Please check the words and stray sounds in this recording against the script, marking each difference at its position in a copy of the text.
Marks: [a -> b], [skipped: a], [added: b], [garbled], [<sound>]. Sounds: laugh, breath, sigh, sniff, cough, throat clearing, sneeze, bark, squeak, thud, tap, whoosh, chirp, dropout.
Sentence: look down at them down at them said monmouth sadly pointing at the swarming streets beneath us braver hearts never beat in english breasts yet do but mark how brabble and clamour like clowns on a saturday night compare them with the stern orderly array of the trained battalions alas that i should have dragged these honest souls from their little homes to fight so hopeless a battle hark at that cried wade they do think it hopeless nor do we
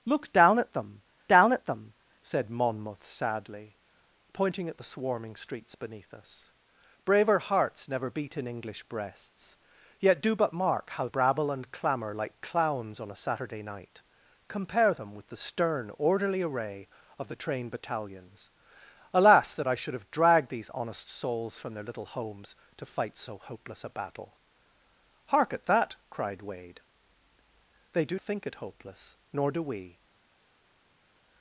look down at them down at them said monmouth sadly pointing at the swarming streets beneath us braver hearts never beat in english breasts yet do but mark how brabble and clamour like clowns on a saturday night compare them with the stern orderly array of the trained battalions alas that i should have dragged these honest souls from their little homes to fight so hopeless a battle hark at that cried wade they do think it hopeless nor do we